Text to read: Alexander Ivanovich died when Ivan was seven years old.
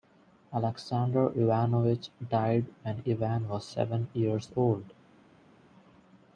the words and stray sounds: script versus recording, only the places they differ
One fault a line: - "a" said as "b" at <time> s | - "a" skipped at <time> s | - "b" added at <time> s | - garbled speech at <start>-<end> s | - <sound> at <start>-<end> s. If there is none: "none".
none